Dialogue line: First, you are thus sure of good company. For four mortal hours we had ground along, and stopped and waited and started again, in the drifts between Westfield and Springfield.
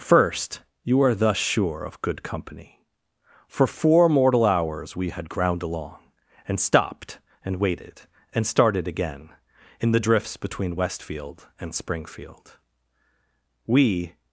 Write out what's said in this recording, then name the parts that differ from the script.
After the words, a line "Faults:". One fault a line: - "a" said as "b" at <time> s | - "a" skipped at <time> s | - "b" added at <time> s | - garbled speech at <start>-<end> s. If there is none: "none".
First, you are thus sure of good company. For four mortal hours we had ground along, and stopped and waited and started again, in the drifts between Westfield and Springfield. We
Faults:
- "We" added at 13.7 s